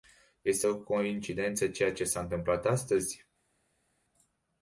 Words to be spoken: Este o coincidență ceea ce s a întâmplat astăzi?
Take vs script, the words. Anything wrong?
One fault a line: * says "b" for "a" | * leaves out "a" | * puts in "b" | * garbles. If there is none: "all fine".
all fine